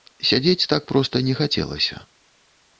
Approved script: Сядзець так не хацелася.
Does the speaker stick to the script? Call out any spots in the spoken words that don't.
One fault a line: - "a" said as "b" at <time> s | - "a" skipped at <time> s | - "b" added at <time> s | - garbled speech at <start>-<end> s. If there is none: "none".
- "проста" added at 0.9 s